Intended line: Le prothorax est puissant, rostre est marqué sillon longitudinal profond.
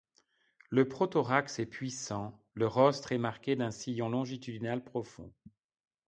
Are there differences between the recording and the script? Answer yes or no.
yes